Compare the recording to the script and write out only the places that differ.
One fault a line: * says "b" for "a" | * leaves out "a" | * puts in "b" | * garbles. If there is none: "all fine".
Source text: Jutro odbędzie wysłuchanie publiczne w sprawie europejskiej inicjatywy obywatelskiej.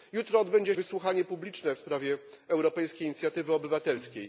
all fine